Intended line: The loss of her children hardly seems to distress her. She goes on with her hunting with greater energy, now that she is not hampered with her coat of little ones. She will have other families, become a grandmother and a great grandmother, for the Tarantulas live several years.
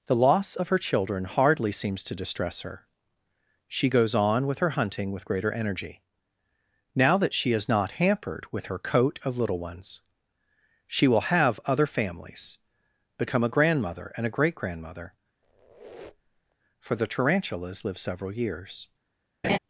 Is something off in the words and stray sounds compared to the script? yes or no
yes